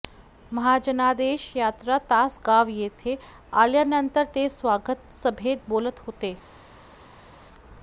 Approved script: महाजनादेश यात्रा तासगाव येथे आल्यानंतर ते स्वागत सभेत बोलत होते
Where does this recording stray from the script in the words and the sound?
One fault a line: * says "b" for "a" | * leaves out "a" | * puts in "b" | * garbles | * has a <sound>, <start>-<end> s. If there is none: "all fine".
all fine